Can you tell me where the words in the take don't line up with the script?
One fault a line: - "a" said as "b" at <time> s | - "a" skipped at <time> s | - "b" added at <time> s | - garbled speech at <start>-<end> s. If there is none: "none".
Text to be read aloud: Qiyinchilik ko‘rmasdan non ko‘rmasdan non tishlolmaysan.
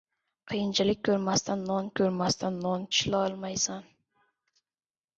none